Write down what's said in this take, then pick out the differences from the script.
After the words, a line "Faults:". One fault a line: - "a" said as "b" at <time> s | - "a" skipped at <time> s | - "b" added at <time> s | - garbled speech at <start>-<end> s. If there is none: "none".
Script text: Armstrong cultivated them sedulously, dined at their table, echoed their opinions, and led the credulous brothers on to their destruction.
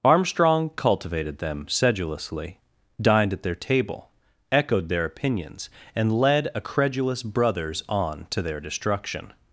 Armstrong cultivated them sedulously, dined at their table, echoed their opinions, and led a credulous brothers on to their destruction.
Faults:
- "the" said as "a" at 6.5 s